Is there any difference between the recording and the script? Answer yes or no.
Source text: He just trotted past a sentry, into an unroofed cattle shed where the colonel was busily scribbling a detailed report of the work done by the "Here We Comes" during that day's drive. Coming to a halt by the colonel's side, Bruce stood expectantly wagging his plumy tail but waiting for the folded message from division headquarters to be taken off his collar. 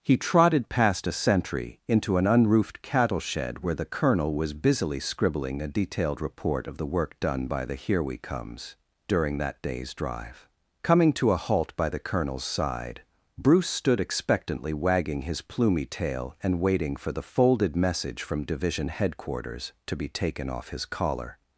yes